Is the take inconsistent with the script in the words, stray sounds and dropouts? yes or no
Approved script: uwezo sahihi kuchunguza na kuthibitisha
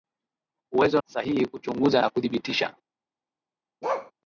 yes